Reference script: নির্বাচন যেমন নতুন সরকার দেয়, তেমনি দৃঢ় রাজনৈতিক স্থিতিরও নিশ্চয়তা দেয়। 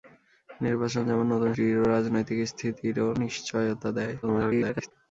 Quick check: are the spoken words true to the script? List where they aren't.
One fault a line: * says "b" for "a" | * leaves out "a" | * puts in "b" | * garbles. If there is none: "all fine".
* leaves out "সরকার দেয় তেমনি"
* garbles